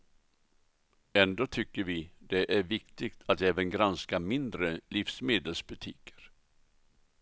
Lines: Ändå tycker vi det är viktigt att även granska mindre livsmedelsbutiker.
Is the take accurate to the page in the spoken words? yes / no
yes